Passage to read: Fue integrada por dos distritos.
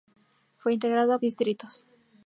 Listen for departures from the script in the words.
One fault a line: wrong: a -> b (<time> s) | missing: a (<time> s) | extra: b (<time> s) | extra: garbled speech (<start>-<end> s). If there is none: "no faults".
missing: por dos (1.2 s)